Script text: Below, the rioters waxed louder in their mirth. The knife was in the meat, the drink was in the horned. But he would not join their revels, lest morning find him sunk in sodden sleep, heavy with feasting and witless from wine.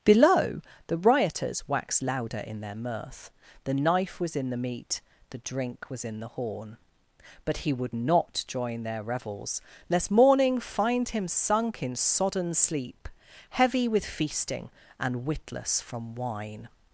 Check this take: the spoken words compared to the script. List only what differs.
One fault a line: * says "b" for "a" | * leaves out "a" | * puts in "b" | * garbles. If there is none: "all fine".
* says "horn" for "horned"